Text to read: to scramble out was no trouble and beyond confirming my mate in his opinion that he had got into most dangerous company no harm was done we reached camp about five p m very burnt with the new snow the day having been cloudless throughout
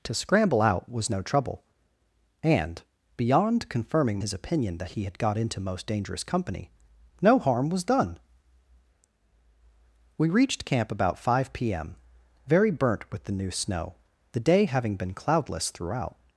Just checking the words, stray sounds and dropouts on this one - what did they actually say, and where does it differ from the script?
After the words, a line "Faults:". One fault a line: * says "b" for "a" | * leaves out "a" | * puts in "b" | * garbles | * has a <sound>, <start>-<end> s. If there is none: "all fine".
to scramble out was no trouble and beyond confirming his opinion that he had got into most dangerous company no harm was done we reached camp about five p m very burnt with the new snow the day having been cloudless throughout
Faults:
* leaves out "my mate in"